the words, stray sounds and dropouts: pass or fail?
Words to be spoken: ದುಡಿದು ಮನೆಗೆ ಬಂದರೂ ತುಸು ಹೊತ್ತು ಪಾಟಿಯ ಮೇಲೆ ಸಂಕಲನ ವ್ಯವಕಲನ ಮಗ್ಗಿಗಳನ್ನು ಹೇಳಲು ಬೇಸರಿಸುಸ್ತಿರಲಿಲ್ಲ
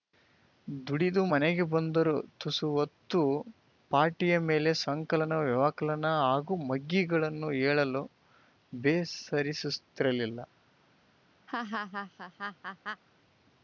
fail